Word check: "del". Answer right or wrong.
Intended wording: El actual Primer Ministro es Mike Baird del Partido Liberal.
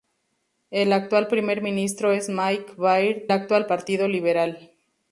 wrong